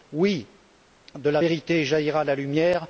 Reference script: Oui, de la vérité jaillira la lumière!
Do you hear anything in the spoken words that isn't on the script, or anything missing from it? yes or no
no